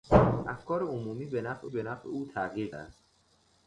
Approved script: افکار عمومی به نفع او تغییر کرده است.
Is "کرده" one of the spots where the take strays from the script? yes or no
yes